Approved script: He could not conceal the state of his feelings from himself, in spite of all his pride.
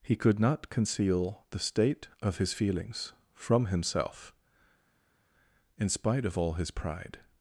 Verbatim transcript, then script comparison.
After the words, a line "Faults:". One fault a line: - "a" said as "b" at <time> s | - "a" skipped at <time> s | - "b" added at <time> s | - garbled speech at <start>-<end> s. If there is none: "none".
He could not conceal the state of his feelings from himself, in spite of all his pride.
Faults:
none